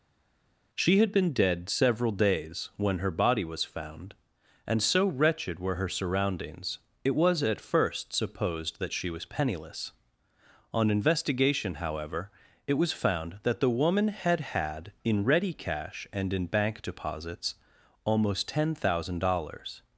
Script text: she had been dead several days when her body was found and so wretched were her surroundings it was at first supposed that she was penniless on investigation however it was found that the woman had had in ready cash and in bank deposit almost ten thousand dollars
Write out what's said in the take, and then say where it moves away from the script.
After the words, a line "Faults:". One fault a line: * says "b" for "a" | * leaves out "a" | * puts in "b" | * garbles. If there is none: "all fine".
she had been dead several days when her body was found and so wretched were her surroundings it was at first supposed that she was penniless on investigation however it was found that the woman had had in ready cash and in bank deposits almost ten thousand dollars
Faults:
* says "deposits" for "deposit"